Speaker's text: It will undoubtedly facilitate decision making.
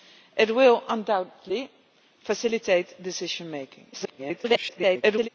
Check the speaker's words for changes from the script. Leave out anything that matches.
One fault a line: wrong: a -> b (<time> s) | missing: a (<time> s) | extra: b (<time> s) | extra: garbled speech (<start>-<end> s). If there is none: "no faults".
extra: garbled speech (3.9-5.3 s)